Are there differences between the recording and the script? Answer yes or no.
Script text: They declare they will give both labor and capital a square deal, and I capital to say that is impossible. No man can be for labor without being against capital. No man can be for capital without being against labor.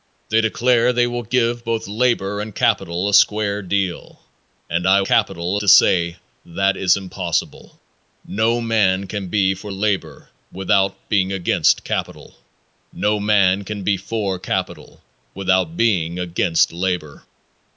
no